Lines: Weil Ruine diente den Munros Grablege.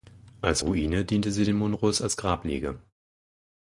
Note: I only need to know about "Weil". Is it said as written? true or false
false